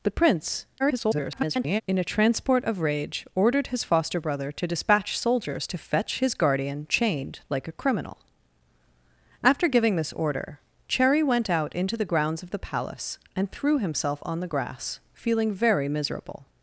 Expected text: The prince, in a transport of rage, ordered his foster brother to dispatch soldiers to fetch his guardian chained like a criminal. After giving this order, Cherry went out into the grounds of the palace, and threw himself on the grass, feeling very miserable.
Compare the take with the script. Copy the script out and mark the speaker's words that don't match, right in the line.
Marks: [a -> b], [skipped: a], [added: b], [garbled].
The prince, [garbled] in a transport of rage, ordered his foster brother to dispatch soldiers to fetch his guardian chained like a criminal. After giving this order, Cherry went out into the grounds of the palace, and threw himself on the grass, feeling very miserable.